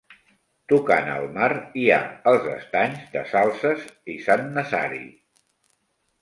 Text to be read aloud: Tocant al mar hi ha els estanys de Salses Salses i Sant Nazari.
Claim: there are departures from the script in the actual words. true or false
true